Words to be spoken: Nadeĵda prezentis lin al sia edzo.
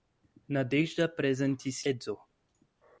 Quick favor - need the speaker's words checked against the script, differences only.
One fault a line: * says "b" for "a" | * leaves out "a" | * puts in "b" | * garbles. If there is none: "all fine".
* leaves out "lin al sia"